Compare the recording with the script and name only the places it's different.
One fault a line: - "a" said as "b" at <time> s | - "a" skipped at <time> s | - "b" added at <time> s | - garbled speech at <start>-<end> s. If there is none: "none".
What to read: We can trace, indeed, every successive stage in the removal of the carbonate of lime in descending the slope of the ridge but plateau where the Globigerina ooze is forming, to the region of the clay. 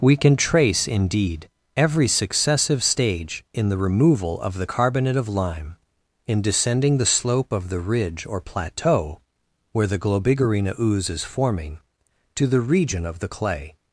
- "but" said as "or" at 8.2 s